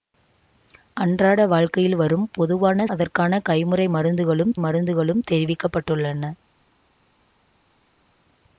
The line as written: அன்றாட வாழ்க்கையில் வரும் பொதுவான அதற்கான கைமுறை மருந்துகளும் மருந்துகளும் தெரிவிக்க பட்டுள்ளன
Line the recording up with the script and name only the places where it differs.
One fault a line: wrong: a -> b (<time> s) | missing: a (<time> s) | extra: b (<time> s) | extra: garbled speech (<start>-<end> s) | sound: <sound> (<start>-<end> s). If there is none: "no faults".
no faults